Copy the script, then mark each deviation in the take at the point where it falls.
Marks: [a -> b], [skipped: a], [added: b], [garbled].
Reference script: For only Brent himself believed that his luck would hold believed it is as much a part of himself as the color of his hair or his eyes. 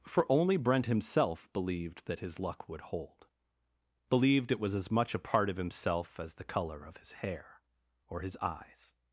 For only Brent himself believed that his luck would hold believed it [is -> was] as much a part of himself as the color of his hair or his eyes.